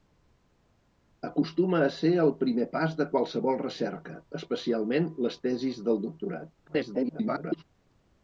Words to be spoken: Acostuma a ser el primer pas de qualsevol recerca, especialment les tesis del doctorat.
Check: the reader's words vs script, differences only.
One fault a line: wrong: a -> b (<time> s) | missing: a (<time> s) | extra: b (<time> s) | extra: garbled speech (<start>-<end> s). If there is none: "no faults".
extra: garbled speech (6.7-7.6 s)